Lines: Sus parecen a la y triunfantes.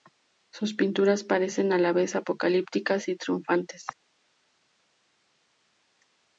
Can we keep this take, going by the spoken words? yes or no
no